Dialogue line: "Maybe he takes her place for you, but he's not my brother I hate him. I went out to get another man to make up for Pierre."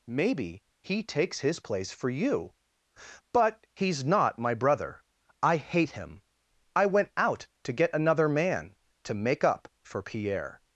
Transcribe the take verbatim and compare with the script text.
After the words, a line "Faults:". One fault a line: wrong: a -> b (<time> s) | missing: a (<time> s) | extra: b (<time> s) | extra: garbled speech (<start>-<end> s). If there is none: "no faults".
"Maybe he takes his place for you, but he's not my brother I hate him. I went out to get another man to make up for Pierre."
Faults:
wrong: her -> his (1.4 s)